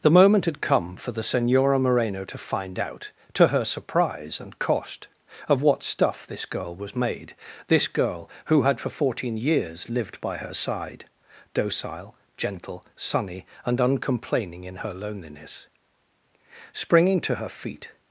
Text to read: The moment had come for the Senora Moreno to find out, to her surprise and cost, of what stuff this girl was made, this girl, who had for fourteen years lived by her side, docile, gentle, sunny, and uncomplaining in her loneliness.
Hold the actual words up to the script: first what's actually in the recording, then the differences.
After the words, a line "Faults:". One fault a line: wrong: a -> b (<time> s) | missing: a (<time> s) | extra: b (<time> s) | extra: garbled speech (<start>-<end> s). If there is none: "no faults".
The moment had come for the Senora Moreno to find out, to her surprise and cost, of what stuff this girl was made, this girl, who had for fourteen years lived by her side, docile, gentle, sunny, and uncomplaining in her loneliness. Springing to her feet
Faults:
extra: Springing to her feet (16.7 s)